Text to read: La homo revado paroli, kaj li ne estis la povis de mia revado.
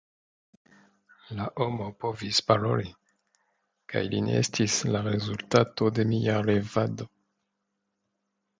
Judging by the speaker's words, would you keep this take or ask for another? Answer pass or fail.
fail